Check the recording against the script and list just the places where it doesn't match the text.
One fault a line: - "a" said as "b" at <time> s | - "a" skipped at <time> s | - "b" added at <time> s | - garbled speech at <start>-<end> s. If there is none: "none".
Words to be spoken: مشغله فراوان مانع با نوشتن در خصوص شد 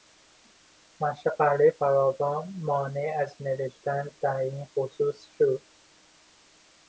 - "با" said as "از" at 3.2 s
- "این" added at 4.4 s